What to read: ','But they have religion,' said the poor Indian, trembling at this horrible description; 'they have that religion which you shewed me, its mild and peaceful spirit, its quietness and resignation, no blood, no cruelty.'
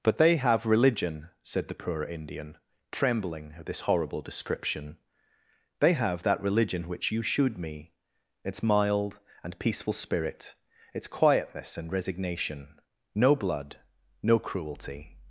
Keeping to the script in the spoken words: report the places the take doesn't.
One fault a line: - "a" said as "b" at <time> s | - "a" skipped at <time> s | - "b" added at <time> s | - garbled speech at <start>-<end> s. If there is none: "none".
none